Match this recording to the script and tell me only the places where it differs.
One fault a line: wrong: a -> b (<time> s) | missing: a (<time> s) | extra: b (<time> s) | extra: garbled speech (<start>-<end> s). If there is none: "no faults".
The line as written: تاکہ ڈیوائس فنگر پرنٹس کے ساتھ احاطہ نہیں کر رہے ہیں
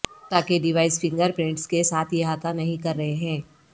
no faults